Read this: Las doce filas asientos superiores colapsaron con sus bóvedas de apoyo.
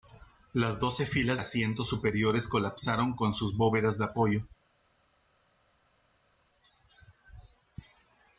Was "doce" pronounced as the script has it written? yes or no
yes